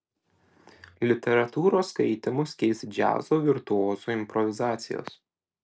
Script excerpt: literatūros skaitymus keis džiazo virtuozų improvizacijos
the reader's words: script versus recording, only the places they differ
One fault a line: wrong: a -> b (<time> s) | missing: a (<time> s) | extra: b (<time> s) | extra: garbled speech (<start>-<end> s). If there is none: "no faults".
no faults